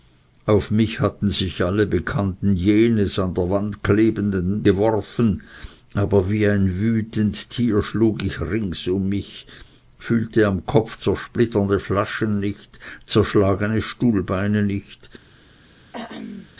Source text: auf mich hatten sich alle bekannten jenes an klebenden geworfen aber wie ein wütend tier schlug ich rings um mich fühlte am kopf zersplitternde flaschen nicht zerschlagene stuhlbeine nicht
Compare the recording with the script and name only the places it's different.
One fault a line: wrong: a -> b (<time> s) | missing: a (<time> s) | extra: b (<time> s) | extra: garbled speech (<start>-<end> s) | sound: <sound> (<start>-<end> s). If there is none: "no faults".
extra: der wand (3.4 s)
sound: throat clearing (15.9-16.5 s)